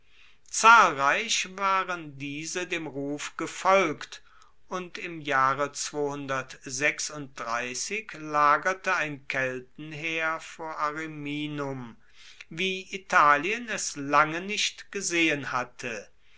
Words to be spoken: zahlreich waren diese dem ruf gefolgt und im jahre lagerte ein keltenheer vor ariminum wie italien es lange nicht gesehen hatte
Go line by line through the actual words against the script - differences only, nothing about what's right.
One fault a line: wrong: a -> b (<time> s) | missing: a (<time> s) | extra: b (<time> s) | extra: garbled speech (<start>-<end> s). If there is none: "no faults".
no faults